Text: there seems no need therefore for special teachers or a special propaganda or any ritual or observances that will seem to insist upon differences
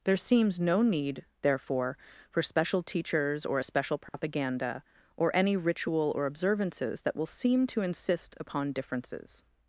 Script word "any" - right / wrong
right